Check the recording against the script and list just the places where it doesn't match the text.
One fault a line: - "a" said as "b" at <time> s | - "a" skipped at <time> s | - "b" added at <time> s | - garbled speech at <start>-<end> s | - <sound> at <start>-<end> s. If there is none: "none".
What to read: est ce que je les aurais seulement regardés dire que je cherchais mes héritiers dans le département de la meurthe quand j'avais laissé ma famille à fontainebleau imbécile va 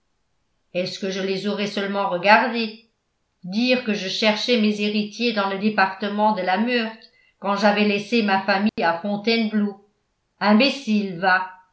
- dropout at 8.7-8.8 s